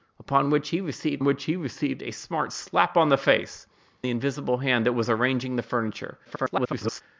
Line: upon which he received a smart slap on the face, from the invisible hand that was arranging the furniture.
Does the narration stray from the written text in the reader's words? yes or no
yes